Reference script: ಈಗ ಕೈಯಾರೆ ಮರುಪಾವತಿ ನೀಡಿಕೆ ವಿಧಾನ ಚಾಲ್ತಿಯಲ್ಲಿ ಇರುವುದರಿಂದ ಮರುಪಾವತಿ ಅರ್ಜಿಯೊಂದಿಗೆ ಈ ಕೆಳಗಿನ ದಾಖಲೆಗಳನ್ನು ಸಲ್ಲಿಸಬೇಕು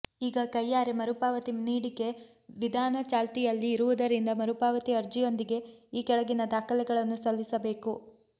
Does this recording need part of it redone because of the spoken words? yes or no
no